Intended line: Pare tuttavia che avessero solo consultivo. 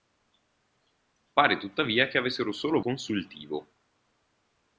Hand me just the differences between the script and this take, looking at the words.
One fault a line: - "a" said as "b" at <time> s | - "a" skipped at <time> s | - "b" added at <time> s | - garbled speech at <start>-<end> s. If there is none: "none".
none